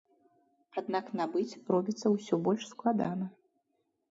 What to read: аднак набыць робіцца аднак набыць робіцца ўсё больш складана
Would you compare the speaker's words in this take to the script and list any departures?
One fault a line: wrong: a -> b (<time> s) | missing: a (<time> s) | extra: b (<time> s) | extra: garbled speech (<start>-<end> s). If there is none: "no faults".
missing: аднак набыць робіцца (2.1 s)